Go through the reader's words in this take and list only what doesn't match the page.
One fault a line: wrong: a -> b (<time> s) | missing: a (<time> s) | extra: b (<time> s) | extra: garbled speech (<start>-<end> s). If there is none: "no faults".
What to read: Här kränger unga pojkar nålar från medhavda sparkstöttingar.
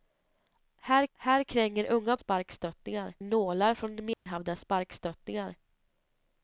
extra: här (1.1 s)
wrong: pojkar -> sparkstöttingar (2.2 s)